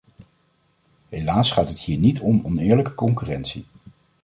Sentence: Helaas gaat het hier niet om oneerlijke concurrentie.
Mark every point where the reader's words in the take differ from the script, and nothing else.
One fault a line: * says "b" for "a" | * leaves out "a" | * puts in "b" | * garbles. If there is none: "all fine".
all fine